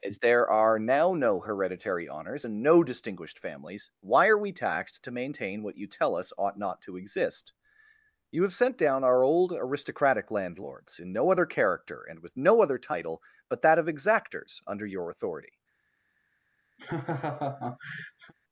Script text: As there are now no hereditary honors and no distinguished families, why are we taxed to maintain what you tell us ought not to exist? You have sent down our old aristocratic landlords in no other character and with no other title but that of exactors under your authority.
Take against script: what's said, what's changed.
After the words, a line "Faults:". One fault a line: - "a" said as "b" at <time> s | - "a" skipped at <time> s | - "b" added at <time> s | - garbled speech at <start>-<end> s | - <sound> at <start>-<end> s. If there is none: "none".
As there are now no hereditary honors and no distinguished families, why are we taxed to maintain what you tell us ought not to exist? You have sent down our old aristocratic landlords in no other character and with no other title but that of exactors under your authority.
Faults:
- laugh at 16.8-18.3 s